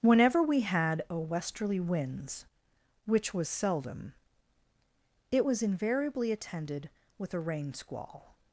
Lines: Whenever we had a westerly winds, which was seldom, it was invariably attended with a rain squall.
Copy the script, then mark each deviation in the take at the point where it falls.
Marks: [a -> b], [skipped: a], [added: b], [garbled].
Whenever we had a westerly winds, which was seldom, it was invariably attended with a rain squall.